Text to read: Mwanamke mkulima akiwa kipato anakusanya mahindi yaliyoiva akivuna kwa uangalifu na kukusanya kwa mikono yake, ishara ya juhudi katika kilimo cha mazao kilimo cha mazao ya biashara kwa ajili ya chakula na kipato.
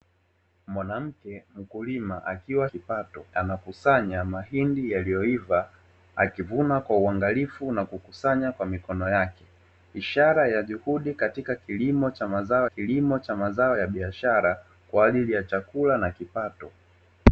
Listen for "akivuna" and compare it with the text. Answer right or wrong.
right